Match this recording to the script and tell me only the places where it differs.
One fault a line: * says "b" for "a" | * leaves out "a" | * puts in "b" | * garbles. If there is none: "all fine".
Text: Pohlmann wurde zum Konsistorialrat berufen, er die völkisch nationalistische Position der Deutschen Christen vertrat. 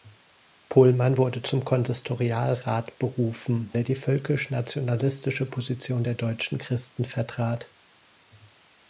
all fine